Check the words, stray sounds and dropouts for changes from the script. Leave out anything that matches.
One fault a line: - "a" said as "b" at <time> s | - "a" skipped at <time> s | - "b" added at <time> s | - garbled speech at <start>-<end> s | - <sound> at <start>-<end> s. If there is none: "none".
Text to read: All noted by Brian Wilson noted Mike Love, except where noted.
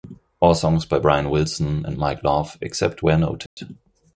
- "noted" said as "songs" at 0.6 s
- "noted" said as "and" at 1.8 s
- dropout at 3.5-3.6 s